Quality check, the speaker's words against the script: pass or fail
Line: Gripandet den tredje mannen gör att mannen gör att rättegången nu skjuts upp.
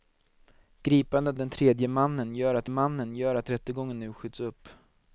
pass